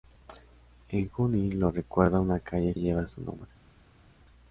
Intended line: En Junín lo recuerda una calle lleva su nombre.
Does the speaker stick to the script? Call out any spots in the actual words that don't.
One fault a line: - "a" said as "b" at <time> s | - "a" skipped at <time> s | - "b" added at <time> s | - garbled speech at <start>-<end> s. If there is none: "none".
none